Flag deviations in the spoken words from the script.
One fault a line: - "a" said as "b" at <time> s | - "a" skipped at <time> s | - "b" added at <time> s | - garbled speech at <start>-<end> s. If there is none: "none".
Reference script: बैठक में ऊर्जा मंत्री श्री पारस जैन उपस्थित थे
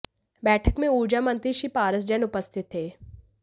none